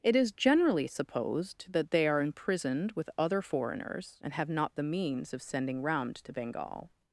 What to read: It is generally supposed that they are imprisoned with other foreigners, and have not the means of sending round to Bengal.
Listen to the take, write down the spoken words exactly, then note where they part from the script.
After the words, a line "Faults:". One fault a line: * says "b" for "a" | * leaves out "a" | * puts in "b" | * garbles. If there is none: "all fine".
It is generally supposed that they are imprisoned with other foreigners, and have not the means of sending round to Bengal.
Faults:
all fine